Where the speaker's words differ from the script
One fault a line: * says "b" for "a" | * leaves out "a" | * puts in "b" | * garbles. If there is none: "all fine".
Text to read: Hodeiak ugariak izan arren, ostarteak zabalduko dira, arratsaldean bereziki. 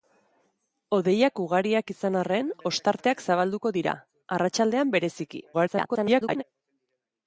* garbles